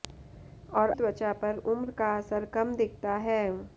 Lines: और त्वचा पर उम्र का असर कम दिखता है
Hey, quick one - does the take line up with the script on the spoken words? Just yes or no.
yes